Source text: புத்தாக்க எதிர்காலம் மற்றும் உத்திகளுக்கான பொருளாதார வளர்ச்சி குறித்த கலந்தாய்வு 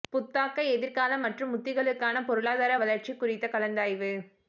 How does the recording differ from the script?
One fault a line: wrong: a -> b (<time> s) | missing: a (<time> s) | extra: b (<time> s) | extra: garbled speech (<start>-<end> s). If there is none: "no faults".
no faults